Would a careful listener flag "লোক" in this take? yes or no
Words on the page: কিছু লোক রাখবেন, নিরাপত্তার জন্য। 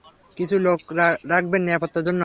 no